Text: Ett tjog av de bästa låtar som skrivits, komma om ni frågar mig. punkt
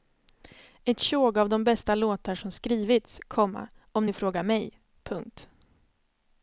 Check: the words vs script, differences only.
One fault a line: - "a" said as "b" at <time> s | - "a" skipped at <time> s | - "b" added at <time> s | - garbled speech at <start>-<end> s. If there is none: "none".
none